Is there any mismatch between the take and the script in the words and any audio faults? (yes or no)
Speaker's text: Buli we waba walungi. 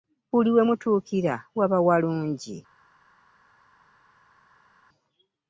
yes